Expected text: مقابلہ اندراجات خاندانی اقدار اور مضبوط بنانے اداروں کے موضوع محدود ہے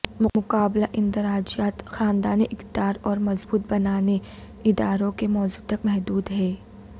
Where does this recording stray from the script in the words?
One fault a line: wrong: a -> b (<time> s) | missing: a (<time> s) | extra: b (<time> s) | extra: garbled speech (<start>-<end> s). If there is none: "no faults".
extra: تک (5.7 s)